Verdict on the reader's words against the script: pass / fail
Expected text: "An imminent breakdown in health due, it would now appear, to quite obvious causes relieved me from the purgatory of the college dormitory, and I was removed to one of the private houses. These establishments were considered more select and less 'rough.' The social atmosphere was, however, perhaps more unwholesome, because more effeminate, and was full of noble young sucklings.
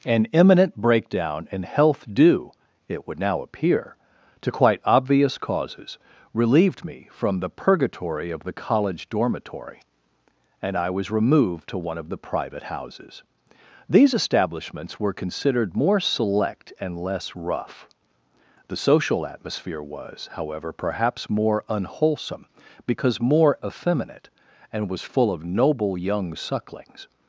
pass